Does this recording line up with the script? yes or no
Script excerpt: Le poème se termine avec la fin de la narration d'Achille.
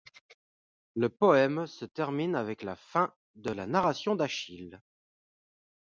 yes